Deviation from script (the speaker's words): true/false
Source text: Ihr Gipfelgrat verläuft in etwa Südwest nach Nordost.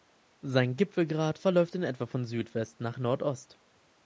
true